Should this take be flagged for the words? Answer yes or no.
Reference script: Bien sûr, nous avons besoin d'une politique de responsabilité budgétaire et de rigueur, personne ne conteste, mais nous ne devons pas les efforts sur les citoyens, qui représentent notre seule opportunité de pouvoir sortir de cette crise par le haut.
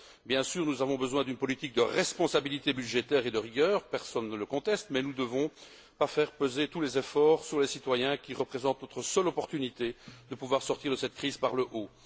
yes